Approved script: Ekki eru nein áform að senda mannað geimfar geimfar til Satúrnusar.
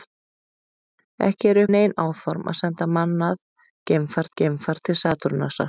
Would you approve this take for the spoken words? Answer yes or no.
yes